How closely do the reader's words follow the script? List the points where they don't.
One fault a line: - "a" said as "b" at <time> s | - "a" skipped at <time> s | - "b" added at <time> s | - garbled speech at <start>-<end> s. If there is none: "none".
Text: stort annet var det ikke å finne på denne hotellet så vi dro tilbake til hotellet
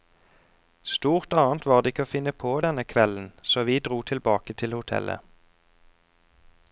- "hotellet" said as "kvelden" at 2.9 s